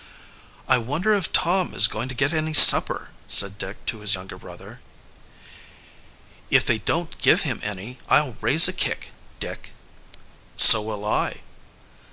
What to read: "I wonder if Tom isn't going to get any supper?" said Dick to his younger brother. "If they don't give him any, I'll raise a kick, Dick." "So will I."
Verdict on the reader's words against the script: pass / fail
fail